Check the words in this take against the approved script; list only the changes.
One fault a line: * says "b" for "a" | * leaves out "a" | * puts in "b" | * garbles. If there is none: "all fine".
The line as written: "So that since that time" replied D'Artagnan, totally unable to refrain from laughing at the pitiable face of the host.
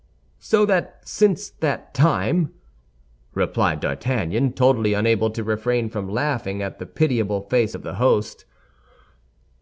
all fine